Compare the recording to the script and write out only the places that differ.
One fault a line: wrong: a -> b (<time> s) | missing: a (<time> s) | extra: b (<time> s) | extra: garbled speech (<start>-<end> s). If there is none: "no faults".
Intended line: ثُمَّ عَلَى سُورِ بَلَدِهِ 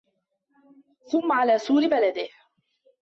no faults